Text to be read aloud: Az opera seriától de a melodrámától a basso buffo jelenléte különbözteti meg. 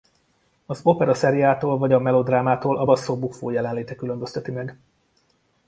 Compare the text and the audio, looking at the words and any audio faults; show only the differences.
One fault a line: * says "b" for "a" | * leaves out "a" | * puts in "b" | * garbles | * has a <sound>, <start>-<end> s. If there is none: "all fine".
* says "vagy" for "de"